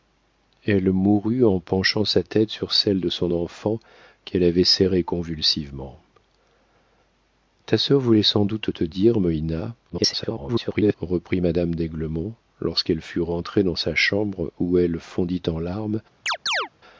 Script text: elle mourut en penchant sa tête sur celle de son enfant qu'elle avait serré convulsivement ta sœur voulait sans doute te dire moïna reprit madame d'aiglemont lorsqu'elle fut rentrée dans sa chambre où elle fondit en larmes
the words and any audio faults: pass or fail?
fail